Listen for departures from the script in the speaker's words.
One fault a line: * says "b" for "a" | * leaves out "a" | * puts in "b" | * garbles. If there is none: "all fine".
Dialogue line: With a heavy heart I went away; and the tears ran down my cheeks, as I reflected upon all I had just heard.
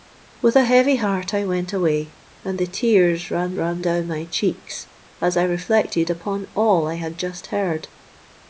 * puts in "ran"